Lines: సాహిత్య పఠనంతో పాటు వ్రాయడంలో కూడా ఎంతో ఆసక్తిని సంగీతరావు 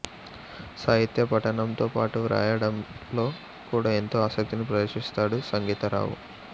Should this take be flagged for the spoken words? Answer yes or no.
yes